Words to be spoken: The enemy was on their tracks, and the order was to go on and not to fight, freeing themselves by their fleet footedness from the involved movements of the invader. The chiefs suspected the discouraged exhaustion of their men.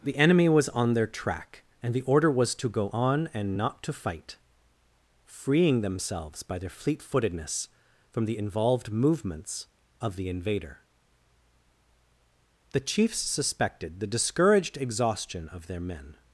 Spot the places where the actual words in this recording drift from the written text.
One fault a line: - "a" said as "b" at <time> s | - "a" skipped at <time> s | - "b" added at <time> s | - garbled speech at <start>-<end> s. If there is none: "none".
- "tracks" said as "track" at 1.1 s